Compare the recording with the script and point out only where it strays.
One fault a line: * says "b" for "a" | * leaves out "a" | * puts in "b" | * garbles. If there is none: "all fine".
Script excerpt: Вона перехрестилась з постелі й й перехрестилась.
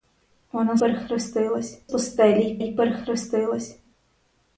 all fine